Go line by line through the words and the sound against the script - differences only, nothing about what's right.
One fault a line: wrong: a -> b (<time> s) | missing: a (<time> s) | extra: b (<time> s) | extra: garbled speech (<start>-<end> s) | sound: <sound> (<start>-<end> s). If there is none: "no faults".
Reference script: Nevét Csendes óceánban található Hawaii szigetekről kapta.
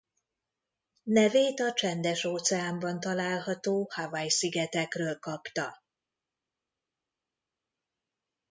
extra: a (1.6 s)